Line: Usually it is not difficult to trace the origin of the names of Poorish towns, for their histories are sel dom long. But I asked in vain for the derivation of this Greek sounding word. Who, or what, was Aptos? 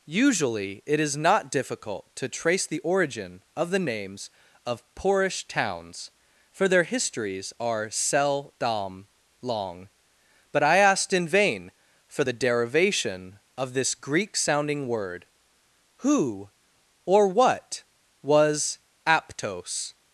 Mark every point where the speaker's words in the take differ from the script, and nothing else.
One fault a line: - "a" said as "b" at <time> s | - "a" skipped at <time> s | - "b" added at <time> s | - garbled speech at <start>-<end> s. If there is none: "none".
none